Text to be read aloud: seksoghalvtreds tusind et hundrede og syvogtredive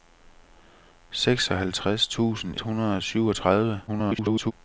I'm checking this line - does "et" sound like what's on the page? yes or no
no